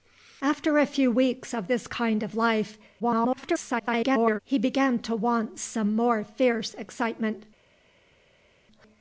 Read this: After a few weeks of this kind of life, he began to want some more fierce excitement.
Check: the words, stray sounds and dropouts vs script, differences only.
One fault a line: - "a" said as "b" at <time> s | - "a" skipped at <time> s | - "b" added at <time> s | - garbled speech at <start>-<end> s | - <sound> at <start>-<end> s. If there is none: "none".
- garbled speech at 3.0-4.4 s